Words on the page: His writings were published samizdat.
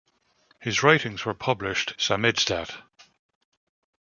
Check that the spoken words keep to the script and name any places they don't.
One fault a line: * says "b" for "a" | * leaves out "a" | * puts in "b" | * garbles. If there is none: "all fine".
all fine